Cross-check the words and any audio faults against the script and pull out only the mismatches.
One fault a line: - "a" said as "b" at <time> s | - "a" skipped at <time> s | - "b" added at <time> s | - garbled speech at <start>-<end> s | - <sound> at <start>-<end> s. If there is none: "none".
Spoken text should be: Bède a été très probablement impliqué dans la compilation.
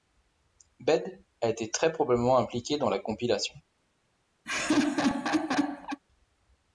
- laugh at 4.4-6.0 s